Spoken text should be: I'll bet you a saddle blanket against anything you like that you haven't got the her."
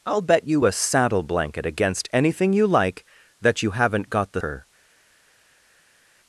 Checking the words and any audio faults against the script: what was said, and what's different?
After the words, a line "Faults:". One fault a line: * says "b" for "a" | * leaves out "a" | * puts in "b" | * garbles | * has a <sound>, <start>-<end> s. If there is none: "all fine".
I'll bet you a saddle blanket against anything you like that you haven't got the her."
Faults:
all fine